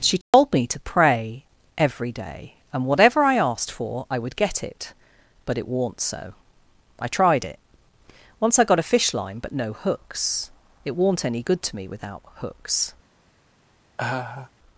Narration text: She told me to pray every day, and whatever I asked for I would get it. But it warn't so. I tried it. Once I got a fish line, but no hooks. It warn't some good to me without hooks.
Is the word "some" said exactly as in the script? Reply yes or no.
no